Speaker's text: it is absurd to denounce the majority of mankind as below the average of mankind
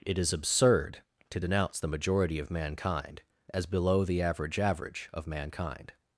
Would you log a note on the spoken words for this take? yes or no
yes